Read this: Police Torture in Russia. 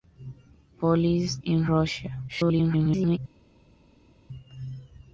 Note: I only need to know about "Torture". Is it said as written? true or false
false